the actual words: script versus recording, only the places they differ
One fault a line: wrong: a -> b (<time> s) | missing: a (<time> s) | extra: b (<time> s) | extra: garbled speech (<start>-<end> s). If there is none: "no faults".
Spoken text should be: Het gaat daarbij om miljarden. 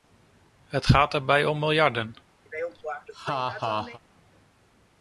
no faults